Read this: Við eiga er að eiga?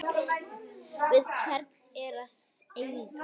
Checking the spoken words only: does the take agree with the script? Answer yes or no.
no